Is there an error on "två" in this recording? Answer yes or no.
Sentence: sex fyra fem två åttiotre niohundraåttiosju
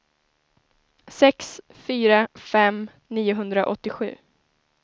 yes